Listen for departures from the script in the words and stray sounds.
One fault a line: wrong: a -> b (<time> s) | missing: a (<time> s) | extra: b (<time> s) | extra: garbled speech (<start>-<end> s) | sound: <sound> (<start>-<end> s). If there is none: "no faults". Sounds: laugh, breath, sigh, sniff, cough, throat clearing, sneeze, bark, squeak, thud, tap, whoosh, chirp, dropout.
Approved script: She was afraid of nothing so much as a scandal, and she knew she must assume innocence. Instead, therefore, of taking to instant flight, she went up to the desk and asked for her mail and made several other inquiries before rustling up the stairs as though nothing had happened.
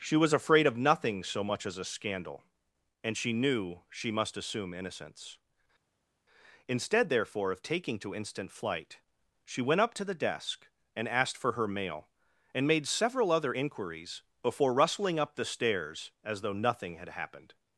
no faults